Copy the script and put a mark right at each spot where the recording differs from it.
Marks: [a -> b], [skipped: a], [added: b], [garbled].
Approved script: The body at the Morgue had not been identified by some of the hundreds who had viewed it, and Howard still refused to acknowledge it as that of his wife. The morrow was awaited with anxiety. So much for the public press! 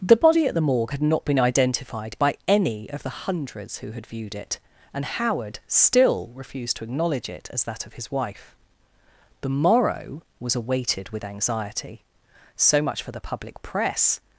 The body at the Morgue had not been identified by [some -> any] of the hundreds who had viewed it, and Howard still refused to acknowledge it as that of his wife. The morrow was awaited with anxiety. So much for the public press!